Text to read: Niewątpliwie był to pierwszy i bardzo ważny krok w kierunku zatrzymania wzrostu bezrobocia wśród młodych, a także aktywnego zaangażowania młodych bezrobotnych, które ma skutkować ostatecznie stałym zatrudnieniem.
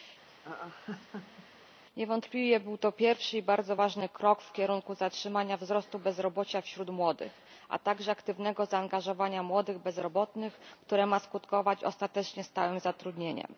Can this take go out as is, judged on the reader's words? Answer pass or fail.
pass